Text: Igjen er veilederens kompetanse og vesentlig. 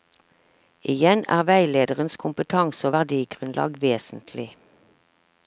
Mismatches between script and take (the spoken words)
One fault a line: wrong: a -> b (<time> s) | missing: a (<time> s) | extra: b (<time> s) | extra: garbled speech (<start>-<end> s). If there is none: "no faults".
extra: verdigrunnlag (2.9 s)